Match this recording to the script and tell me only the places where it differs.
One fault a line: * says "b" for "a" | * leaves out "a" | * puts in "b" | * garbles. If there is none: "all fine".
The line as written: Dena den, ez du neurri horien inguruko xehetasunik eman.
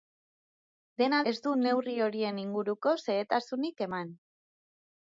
* leaves out "den"